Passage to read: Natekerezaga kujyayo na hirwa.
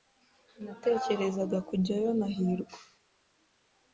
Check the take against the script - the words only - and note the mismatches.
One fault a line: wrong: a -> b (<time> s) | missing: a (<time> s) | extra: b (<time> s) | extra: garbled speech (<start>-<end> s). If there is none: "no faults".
no faults